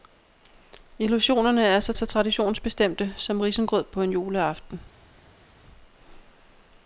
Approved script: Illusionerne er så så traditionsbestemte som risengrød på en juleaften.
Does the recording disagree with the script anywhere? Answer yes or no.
no